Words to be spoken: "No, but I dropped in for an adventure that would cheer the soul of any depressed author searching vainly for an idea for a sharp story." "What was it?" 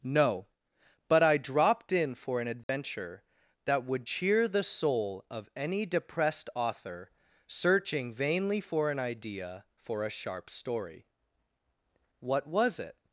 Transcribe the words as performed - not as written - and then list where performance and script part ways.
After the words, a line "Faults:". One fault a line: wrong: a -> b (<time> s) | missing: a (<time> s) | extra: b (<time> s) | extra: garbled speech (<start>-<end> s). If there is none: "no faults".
"No, but I dropped in for an adventure that would cheer the soul of any depressed author searching vainly for an idea for a sharp story." "What was it?"
Faults:
no faults